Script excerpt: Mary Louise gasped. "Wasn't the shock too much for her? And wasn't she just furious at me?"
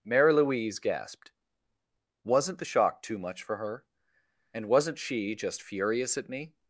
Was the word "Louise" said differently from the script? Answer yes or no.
no